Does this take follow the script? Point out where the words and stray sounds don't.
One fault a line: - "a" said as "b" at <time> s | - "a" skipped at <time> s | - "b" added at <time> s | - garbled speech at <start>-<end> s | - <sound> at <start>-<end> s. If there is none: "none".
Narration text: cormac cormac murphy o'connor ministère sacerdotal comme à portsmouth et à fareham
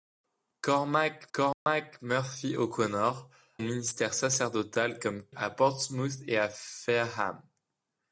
- dropout at 1.5-1.7 s